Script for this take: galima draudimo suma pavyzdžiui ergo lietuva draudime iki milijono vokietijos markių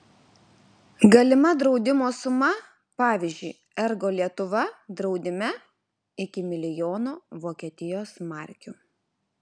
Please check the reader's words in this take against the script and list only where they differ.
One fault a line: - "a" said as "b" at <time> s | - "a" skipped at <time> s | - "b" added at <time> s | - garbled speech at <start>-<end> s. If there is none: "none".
none